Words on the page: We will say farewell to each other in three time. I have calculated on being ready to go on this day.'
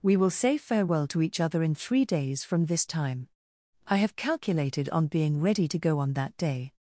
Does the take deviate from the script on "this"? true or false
true